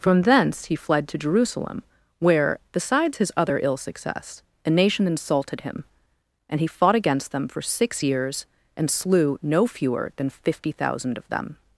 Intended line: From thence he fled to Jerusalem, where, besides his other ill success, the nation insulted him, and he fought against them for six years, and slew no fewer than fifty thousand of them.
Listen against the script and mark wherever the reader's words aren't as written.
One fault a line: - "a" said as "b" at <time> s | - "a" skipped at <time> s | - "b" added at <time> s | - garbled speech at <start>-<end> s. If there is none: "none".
- "the" said as "a" at 4.7 s